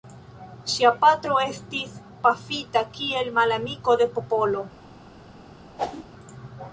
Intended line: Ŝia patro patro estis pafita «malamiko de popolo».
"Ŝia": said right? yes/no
yes